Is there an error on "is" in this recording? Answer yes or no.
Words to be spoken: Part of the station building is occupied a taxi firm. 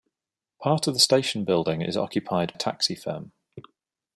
no